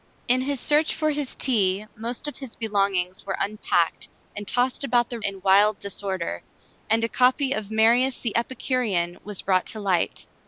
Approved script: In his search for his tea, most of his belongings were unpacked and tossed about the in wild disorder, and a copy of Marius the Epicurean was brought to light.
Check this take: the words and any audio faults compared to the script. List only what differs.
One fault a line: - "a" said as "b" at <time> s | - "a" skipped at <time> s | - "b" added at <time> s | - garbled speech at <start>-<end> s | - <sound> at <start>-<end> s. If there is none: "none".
none